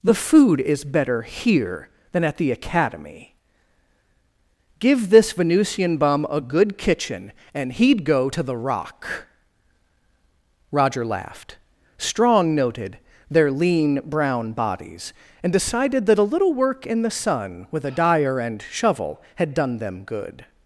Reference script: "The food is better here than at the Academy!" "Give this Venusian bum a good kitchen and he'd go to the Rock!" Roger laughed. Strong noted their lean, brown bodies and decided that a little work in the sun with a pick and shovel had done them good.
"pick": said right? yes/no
no